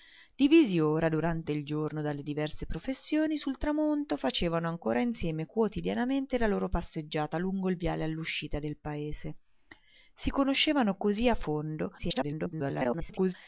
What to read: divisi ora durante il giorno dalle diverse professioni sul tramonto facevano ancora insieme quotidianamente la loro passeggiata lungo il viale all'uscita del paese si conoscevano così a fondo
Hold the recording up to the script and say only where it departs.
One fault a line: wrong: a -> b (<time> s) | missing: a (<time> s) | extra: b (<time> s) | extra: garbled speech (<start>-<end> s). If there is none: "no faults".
extra: garbled speech (12.0-13.3 s)